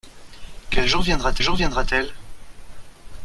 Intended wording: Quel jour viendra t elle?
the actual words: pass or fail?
fail